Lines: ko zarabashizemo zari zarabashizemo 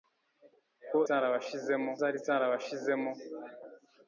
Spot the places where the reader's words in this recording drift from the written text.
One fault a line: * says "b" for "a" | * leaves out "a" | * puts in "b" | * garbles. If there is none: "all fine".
all fine